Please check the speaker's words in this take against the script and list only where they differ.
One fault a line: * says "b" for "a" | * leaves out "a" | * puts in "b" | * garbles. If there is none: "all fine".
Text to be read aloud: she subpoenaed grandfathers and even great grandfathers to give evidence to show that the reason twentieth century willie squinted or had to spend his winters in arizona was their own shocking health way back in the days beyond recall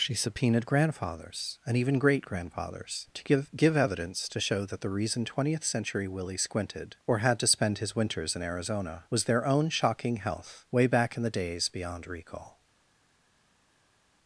* puts in "give"